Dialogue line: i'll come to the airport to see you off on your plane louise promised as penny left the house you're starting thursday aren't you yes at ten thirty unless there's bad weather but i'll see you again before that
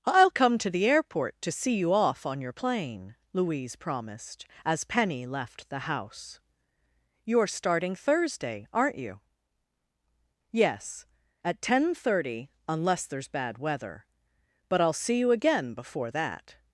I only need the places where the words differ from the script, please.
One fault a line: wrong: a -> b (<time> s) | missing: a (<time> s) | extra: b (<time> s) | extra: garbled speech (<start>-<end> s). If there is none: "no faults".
no faults